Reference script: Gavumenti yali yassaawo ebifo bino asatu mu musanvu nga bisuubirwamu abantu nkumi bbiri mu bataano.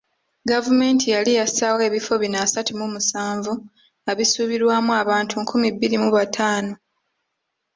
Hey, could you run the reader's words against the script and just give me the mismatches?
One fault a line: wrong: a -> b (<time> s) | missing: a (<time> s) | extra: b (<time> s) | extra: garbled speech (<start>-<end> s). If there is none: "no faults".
no faults